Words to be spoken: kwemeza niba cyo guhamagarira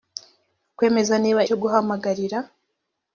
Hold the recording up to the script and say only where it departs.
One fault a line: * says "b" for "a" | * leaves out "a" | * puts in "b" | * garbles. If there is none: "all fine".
all fine